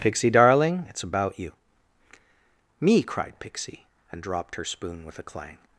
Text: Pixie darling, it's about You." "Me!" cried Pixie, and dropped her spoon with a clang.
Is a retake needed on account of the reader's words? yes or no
no